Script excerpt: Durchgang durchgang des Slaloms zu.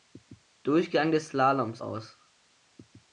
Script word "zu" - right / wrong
wrong